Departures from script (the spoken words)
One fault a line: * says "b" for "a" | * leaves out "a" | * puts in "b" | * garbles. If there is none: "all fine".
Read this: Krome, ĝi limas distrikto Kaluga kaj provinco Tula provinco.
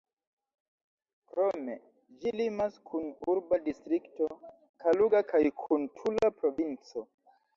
* puts in "kun urba"
* says "kun" for "provinco"